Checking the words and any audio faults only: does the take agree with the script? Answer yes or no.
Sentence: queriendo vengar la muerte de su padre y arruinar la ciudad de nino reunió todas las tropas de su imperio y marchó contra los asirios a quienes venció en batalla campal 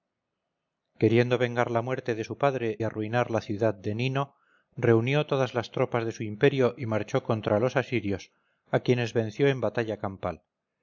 no